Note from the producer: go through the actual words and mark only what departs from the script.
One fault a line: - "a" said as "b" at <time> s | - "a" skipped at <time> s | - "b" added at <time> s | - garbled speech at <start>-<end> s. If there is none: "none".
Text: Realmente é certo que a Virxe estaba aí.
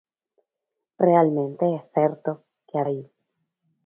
- "Virxe estaba" skipped at 2.8 s